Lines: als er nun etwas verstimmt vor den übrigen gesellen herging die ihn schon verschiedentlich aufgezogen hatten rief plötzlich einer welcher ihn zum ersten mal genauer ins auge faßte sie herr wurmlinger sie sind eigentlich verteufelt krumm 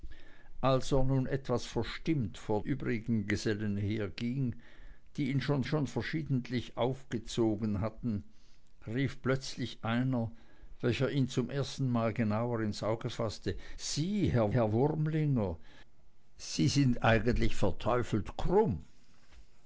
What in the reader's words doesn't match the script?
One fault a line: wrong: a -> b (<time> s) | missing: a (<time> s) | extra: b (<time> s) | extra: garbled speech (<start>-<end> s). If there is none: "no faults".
missing: den (2.6 s)
extra: schon (5.6 s)
extra: herr (14.5 s)